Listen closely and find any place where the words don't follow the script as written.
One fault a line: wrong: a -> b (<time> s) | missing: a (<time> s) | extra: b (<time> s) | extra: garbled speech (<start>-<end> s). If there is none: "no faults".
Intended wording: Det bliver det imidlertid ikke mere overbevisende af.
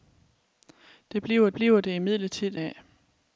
extra: bliver (1.5 s)
missing: ikke mere overbevisende (2.6 s)